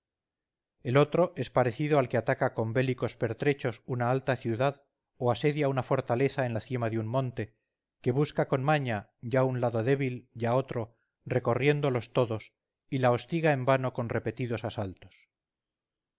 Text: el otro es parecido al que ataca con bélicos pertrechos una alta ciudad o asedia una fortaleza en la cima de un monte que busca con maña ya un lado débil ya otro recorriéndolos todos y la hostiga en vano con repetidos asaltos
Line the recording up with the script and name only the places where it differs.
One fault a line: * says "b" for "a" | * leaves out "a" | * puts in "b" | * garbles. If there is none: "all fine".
all fine